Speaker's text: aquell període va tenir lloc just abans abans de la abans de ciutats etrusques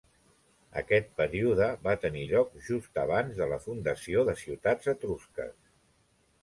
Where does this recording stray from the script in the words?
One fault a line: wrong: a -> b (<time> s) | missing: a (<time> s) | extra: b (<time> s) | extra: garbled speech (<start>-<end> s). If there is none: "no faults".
wrong: aquell -> aquest (0.8 s)
missing: abans (3.4 s)
wrong: abans -> fundació (3.7 s)